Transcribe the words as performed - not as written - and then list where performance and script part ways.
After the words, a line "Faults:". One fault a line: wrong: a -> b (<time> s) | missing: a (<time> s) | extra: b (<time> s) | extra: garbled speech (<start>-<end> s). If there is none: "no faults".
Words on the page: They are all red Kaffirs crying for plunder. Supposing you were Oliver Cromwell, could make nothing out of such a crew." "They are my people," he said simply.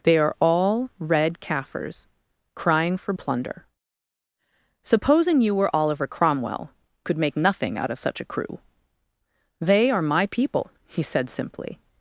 They are all red Kaffirs crying for plunder. Supposing you were Oliver Cromwell, could make nothing out of such a crew." "They are my people," he said simply.
Faults:
no faults